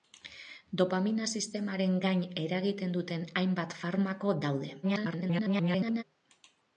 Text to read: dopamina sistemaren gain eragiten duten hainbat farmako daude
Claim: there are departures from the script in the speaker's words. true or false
true